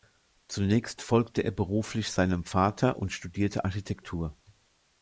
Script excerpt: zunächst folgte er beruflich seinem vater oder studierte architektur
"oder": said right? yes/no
no